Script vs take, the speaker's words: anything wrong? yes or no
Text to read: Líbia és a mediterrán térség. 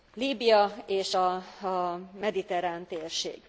no